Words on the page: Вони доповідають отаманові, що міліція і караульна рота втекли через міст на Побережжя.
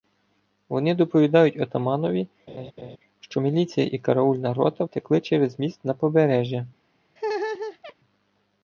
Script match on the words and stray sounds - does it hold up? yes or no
no